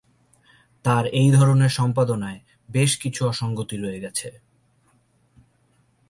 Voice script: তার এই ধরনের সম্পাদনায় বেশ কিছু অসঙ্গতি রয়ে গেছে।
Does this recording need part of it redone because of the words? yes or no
no